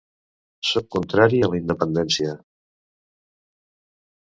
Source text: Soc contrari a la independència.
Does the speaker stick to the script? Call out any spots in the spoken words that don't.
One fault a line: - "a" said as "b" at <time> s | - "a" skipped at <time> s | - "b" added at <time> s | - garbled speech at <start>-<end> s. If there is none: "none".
none